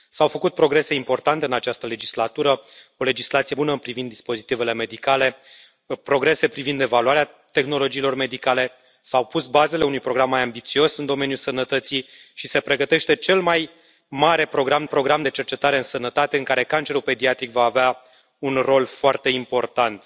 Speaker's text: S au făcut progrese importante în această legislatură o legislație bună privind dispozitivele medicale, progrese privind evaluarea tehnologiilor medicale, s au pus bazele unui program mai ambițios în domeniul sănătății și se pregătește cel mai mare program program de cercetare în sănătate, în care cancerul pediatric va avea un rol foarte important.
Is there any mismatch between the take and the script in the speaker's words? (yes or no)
no